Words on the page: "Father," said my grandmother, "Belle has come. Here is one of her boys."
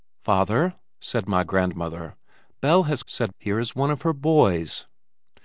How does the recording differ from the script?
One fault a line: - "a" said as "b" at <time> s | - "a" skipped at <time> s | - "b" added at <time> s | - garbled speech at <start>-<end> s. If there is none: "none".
- "come" said as "said" at 3.0 s